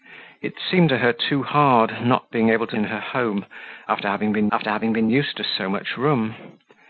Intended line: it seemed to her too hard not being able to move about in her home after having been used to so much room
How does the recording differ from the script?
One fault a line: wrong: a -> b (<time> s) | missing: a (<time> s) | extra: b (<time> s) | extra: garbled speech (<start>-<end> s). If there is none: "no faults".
missing: move about (2.8 s)
extra: after having been (4.5 s)